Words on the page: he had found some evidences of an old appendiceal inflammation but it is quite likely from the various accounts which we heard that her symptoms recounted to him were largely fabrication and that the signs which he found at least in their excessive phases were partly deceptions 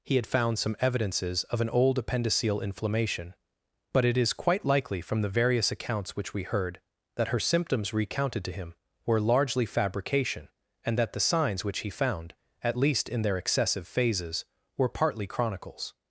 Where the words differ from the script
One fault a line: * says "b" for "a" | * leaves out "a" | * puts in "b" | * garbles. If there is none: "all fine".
* says "chronicles" for "deceptions"